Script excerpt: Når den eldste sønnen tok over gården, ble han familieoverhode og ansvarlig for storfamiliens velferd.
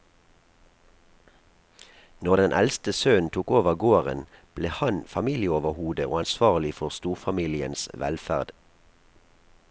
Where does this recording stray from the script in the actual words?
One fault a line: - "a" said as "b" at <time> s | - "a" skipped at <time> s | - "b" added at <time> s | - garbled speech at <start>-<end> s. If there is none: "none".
none